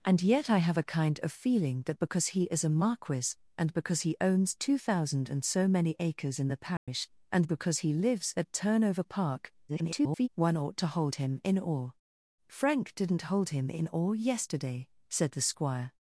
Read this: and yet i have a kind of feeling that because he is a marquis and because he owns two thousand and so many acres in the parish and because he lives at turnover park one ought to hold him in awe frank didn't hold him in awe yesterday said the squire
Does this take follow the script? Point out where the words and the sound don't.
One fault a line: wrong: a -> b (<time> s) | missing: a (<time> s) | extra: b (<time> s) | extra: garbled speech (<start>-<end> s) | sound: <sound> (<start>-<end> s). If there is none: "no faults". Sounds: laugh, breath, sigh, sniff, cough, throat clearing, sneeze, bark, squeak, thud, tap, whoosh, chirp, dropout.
sound: dropout (6.8-6.9 s)
extra: garbled speech (9.7-10.3 s)